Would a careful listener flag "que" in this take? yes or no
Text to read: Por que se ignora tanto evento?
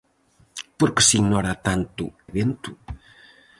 no